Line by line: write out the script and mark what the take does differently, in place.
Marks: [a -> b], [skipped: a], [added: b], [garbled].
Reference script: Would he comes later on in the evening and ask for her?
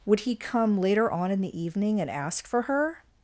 Would he [comes -> come] later on in the evening and ask for her?